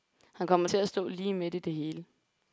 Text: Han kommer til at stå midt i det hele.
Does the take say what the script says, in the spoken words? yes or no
no